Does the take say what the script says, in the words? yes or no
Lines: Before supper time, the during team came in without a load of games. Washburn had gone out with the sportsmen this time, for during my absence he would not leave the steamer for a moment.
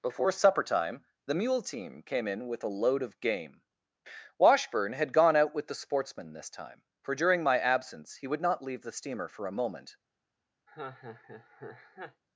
no